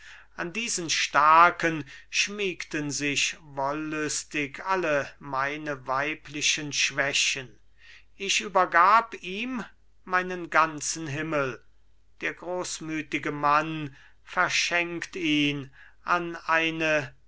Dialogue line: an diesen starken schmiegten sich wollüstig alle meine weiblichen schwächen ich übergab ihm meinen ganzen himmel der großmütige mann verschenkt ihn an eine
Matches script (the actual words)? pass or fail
pass